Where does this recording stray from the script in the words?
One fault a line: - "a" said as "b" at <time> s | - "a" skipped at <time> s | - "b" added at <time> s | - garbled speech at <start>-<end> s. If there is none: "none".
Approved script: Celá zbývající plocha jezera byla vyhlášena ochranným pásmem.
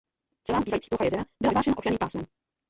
none